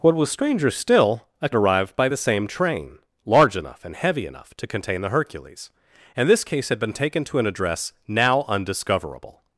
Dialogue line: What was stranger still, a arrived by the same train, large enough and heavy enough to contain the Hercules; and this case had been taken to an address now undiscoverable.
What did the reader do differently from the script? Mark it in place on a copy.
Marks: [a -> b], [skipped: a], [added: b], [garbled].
What was stranger still, a arrived by the same train, large enough and heavy enough to contain the Hercules; and this case had been taken to an address now undiscoverable.